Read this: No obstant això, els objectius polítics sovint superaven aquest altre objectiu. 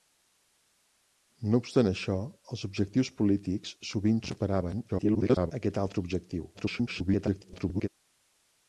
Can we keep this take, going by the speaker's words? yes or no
no